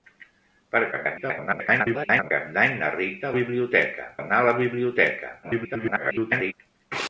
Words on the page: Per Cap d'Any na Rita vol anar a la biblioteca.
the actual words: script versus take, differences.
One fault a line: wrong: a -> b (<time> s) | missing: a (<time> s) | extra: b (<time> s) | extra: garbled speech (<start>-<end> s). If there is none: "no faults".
extra: garbled speech (0.9-2.3 s)
wrong: vol -> biblioteca (3.4 s)
extra: garbled speech (5.4-6.5 s)